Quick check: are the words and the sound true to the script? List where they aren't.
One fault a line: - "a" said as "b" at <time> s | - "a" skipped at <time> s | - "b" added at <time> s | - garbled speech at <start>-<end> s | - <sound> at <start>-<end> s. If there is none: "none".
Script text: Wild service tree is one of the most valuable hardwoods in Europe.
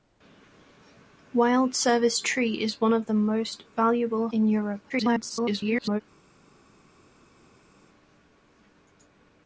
- "hardwoods" skipped at 4.3 s
- garbled speech at 4.9-6.0 s